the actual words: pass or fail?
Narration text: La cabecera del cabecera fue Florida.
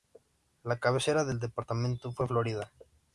fail